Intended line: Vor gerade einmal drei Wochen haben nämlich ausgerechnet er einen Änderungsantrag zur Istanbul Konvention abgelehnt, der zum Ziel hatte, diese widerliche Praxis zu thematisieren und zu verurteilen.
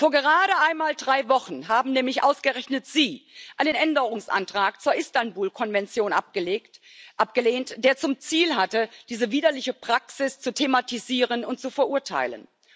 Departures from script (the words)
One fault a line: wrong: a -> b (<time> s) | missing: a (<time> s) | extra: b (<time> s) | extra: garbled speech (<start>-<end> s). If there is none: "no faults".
wrong: er -> sie (2.9 s)